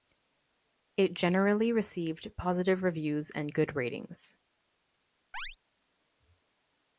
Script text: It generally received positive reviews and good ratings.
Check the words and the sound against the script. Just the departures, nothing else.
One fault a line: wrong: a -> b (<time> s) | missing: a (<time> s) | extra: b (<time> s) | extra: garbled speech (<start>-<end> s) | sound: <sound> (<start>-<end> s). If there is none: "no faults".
sound: chirp (5.3-5.6 s)